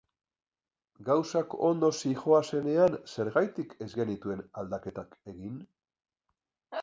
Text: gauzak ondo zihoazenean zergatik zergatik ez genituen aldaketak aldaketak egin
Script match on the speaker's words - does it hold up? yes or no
no